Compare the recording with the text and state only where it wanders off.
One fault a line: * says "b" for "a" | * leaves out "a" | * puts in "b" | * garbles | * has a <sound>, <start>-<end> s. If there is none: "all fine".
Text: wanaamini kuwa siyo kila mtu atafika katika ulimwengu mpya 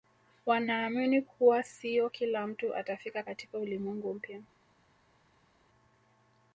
all fine